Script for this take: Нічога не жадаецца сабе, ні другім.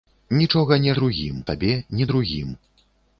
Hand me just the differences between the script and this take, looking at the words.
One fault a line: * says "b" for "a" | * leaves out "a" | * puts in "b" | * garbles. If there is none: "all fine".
* says "другім" for "жадаецца"